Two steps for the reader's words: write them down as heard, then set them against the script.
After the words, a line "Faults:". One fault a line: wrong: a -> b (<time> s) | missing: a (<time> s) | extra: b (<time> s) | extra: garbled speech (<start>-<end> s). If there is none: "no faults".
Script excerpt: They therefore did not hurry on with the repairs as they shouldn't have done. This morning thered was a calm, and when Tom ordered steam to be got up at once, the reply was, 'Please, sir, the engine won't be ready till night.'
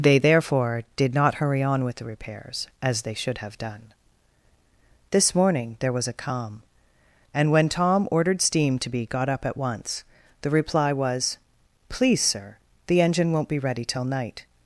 They therefore did not hurry on with the repairs as they should have done. This morning there was a calm, and when Tom ordered steam to be got up at once, the reply was, 'Please, sir, the engine won't be ready till night.'
Faults:
wrong: shouldn't -> should (3.1 s)
wrong: thered -> there (5.8 s)